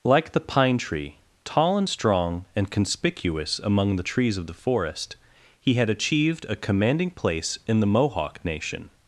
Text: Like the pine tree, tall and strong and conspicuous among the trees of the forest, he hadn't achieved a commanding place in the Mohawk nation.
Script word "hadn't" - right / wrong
wrong